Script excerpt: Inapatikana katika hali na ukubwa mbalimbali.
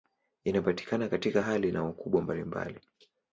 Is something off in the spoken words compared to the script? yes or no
no